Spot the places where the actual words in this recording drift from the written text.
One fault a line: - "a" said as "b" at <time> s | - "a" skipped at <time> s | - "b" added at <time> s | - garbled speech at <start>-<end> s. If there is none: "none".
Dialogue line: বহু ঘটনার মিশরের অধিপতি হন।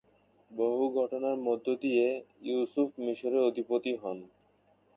- "মধ্য দিয়ে ইউসুফ" added at 1.5 s